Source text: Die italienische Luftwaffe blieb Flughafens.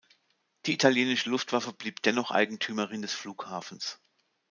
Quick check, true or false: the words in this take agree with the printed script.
false